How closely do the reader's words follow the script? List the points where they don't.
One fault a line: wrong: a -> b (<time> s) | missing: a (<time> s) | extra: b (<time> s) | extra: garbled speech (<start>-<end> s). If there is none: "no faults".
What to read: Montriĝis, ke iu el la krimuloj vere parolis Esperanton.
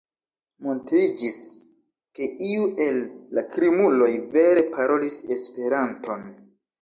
no faults